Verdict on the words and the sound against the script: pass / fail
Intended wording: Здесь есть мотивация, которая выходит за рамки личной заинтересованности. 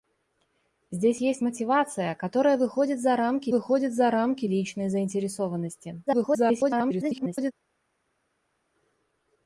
fail